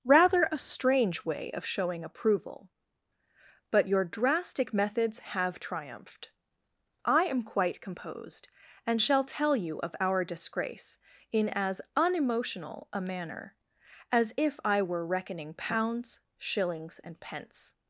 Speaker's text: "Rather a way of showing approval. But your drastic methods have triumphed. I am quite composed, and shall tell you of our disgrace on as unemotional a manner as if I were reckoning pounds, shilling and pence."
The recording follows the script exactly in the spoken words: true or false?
false